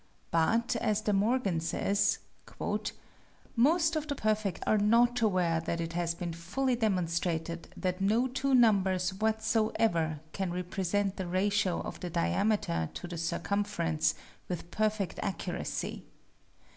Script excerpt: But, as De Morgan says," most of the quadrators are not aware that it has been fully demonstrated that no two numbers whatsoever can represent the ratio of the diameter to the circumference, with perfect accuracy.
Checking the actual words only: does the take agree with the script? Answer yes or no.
no